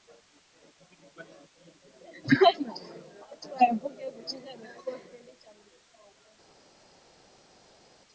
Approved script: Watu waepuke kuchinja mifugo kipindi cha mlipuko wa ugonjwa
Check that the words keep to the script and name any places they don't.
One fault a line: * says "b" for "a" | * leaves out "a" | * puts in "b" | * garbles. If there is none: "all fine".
all fine